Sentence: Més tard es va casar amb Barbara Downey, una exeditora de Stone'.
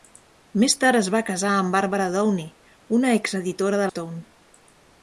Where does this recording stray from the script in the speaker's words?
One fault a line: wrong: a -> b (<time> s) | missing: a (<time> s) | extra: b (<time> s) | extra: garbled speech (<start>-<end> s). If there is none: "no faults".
no faults